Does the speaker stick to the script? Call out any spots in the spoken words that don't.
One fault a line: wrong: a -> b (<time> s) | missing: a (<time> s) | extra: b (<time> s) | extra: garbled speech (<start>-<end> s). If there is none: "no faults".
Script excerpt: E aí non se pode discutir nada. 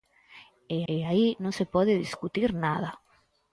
extra: e (0.9 s)